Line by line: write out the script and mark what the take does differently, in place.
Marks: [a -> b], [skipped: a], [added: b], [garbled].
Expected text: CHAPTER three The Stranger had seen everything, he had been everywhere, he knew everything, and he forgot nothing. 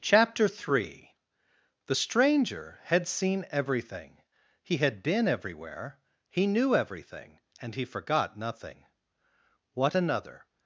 CHAPTER three The Stranger had seen everything, he had been everywhere, he knew everything, and he forgot nothing. [added: What another]